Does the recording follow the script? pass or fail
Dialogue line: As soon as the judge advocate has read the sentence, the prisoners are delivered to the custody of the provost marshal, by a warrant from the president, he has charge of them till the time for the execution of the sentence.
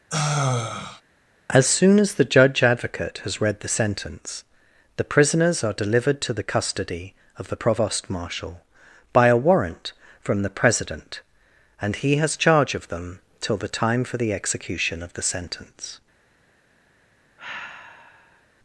fail